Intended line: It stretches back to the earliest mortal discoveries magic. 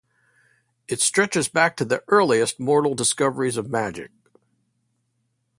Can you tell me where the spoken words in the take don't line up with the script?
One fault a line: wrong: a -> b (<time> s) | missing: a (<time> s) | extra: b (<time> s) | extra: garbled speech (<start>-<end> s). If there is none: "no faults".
extra: of (3.6 s)